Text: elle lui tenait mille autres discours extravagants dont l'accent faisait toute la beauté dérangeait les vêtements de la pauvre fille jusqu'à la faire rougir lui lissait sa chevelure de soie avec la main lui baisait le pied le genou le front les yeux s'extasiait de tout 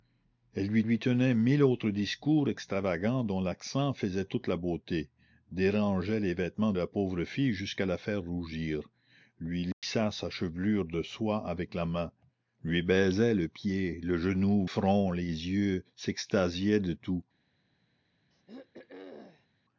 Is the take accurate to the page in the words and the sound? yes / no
no